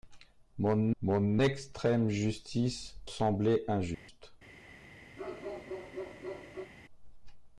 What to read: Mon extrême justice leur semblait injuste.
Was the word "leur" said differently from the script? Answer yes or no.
yes